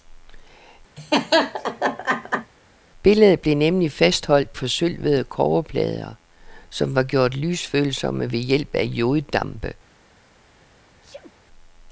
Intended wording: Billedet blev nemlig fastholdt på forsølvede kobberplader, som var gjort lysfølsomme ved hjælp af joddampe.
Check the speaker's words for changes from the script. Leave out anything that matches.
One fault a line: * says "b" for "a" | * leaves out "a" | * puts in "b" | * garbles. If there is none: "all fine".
* leaves out "på"